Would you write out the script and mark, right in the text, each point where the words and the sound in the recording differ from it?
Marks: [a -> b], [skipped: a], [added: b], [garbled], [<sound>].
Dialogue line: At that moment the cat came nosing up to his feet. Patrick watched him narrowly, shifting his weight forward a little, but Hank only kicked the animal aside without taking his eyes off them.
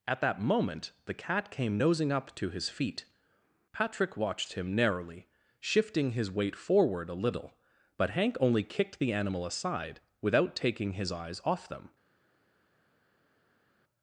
At that moment the cat came nosing up to his feet. Patrick watched him narrowly, shifting his weight forward a little, but Hank only kicked the animal aside without taking his eyes off them.